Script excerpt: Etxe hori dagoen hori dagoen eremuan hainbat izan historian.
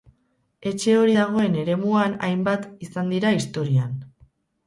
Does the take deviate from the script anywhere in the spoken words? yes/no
yes